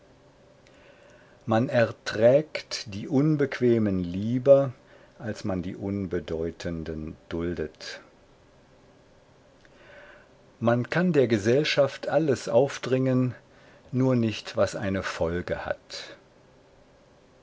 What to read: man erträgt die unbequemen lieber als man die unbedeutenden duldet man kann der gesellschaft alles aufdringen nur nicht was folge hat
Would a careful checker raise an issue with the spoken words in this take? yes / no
yes